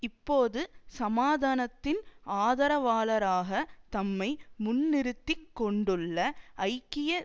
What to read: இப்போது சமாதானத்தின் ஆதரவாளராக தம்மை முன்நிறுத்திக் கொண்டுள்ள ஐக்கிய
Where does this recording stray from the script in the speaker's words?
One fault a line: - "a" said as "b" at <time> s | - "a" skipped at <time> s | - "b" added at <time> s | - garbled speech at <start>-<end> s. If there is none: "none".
none